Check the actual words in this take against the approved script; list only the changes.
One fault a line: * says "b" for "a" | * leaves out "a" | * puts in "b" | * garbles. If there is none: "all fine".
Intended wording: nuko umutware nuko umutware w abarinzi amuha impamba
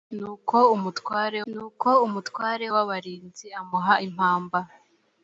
all fine